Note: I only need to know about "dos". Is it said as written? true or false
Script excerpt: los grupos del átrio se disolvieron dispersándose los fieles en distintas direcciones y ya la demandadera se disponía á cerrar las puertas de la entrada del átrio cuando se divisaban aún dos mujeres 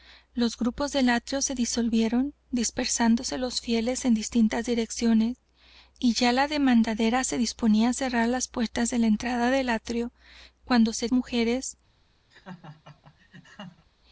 false